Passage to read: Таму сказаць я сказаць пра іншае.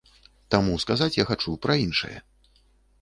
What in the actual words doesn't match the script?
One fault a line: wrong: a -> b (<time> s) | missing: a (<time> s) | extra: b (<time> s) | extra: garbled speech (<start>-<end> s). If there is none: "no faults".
wrong: сказаць -> хачу (1.3 s)